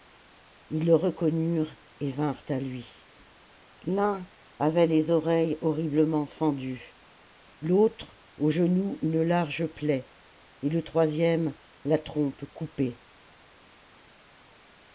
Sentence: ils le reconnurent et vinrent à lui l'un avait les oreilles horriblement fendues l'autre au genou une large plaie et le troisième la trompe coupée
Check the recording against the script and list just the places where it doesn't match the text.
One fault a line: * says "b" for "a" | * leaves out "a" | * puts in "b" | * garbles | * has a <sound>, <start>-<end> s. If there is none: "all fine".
all fine